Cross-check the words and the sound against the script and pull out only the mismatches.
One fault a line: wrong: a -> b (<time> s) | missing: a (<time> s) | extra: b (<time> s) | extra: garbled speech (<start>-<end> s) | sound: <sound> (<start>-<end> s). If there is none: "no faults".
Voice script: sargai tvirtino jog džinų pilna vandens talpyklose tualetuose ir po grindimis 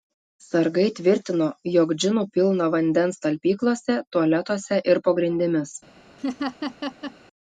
sound: laugh (6.2-7.1 s)